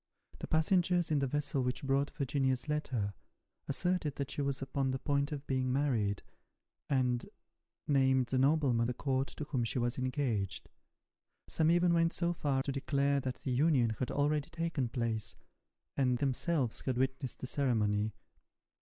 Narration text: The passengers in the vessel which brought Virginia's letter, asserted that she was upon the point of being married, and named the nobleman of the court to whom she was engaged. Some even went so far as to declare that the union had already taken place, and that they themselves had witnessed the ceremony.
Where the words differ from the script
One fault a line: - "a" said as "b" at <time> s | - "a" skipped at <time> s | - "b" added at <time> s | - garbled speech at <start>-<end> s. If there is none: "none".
- "of" skipped at 8.9 s
- "as" skipped at 12.6 s
- "that they" skipped at 16.2 s